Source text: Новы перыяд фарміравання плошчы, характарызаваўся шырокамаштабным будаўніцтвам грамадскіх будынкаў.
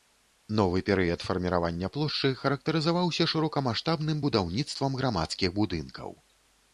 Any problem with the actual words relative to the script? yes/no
no